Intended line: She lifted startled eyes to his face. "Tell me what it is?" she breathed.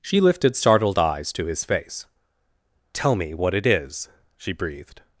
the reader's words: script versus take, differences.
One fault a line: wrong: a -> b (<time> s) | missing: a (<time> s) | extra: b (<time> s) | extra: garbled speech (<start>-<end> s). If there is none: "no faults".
no faults